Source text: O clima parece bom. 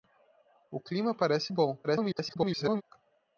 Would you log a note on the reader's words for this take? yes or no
yes